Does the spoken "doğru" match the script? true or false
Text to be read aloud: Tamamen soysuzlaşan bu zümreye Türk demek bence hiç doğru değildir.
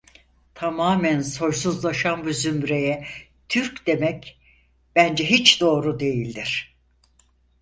true